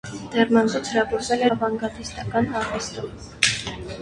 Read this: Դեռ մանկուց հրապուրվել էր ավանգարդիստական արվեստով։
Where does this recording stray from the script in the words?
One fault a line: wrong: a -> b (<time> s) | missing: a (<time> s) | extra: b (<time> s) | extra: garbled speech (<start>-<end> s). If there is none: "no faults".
missing: էր (1.4 s)